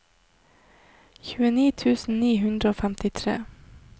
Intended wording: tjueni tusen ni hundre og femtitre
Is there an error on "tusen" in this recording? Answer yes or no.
no